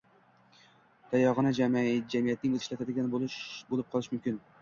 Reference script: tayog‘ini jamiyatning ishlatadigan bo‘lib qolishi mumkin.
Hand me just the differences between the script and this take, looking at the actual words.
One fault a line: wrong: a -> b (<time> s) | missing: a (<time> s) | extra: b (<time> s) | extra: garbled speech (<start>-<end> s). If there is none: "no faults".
no faults